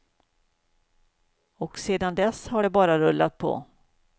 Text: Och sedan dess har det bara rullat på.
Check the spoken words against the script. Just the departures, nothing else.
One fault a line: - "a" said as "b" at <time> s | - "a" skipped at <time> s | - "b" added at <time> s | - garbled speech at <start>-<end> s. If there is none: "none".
none